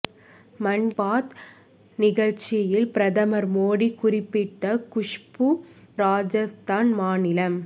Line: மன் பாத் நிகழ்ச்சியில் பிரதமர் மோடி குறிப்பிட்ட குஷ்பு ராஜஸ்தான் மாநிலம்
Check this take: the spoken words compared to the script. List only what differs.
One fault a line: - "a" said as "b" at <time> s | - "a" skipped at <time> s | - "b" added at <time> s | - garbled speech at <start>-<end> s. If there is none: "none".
none